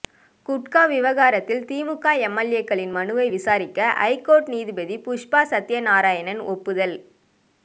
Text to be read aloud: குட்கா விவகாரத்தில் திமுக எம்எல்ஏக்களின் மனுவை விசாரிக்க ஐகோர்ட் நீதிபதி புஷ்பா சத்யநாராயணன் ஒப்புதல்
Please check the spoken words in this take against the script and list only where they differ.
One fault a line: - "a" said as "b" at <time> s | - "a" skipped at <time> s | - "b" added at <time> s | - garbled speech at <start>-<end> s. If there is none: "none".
none